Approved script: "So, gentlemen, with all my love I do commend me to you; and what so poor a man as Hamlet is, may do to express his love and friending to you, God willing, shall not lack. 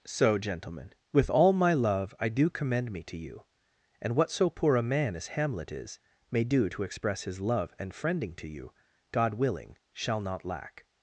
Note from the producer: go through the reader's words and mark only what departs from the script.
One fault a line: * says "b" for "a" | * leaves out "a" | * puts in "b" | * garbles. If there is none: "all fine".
all fine